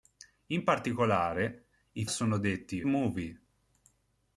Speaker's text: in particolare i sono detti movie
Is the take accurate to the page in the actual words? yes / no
yes